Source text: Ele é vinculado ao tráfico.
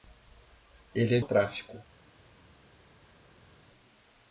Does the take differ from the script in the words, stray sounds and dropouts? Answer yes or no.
yes